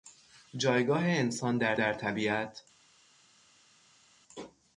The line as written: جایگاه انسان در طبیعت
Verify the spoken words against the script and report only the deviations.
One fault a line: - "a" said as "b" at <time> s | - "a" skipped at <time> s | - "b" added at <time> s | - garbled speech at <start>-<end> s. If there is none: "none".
- "در" added at 1.7 s